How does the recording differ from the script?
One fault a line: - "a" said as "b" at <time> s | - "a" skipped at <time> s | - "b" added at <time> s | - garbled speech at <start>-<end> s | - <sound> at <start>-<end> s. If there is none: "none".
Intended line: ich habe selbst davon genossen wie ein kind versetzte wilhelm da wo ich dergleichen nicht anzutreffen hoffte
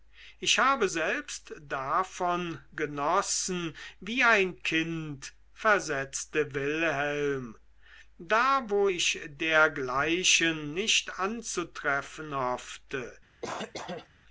- cough at 13.4-14.1 s